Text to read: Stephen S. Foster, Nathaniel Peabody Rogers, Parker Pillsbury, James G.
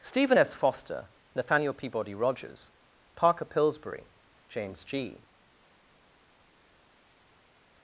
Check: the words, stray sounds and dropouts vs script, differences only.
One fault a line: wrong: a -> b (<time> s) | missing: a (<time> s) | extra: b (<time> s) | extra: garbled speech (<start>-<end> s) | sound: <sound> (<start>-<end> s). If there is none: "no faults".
no faults